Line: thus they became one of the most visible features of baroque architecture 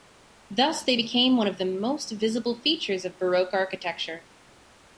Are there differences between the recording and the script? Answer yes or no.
no